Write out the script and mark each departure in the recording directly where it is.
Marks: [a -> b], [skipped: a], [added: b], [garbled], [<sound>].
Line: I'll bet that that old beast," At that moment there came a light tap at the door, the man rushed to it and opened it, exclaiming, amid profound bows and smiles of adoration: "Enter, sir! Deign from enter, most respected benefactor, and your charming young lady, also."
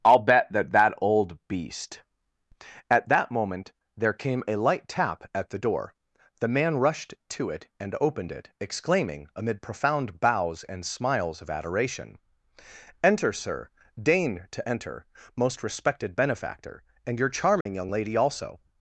I'll bet that that old beast," At that moment there came a light tap at the door, the man rushed to it and opened it, exclaiming, amid profound bows and smiles of adoration: "Enter, sir! Deign [from -> to] enter, most respected benefactor, and your charming [dropout] young lady, also."